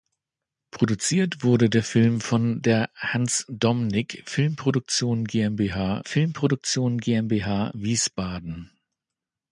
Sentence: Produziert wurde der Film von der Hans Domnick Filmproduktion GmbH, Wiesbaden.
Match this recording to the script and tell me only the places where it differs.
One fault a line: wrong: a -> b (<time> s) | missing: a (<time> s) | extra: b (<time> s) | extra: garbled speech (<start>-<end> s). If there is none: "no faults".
extra: Filmproduktion GmbH (6.0 s)